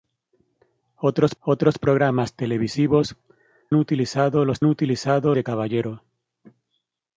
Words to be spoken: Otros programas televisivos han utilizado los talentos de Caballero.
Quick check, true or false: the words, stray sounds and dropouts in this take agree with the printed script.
false